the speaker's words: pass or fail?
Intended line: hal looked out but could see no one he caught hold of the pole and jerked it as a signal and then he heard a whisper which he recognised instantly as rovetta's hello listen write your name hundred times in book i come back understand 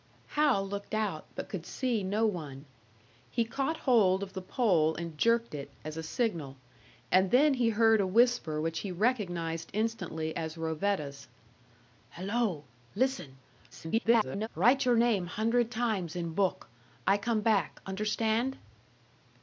fail